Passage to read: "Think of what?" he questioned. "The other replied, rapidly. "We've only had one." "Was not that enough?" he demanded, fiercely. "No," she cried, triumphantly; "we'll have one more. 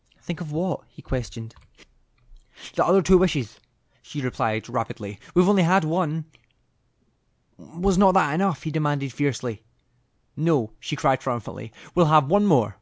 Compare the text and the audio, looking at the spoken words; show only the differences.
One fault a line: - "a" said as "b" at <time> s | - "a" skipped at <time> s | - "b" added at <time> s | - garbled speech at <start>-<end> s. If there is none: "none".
- "two wishes she" added at 3.0 s